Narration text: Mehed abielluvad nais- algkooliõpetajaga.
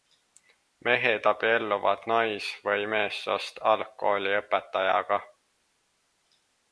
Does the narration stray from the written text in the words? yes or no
yes